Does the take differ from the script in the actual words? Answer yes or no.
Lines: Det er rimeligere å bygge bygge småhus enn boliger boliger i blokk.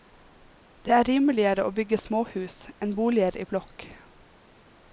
yes